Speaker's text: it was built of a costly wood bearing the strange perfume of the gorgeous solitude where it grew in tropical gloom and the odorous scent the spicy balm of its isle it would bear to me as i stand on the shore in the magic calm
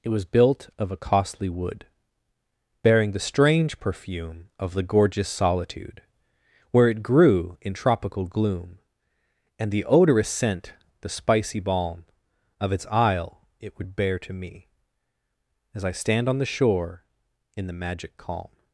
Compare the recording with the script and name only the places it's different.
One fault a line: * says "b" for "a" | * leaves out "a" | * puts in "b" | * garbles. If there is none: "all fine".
all fine